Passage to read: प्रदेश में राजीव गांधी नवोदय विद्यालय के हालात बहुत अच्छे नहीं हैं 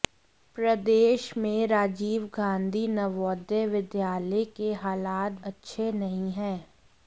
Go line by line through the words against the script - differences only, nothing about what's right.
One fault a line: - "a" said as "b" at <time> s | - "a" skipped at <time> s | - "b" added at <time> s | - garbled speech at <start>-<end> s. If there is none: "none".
- "बहुत" skipped at 5.4 s